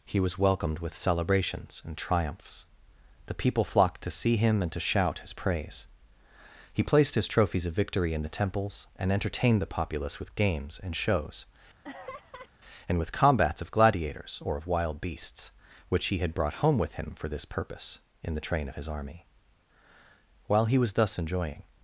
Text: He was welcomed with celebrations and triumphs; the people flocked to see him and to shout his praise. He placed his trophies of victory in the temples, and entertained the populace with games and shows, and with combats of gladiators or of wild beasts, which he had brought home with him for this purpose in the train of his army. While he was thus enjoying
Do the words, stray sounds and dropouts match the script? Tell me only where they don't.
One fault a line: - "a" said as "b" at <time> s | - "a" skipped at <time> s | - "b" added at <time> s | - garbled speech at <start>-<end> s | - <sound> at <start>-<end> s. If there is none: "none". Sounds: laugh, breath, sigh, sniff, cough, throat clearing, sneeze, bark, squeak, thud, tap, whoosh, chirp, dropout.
- laugh at 11.8-12.5 s